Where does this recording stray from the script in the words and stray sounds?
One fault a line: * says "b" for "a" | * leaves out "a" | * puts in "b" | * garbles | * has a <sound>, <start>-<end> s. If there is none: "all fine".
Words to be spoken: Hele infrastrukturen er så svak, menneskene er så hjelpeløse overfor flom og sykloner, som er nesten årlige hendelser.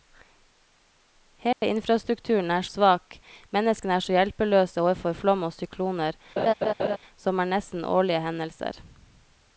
* has a dropout, 1.5-1.6 s
* leaves out "så"
* has a laugh, 6.4-7.0 s